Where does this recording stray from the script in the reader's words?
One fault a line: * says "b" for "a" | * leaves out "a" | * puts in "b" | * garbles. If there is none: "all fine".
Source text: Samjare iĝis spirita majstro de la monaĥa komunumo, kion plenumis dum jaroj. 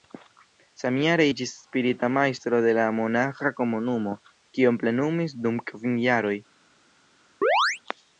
* puts in "kvin"